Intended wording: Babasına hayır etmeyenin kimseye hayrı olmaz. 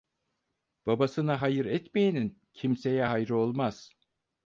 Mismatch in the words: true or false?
false